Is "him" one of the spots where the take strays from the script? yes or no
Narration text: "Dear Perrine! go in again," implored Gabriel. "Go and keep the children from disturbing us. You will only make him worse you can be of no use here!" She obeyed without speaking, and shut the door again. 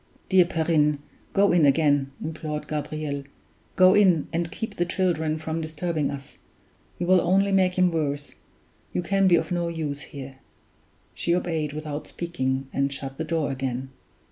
no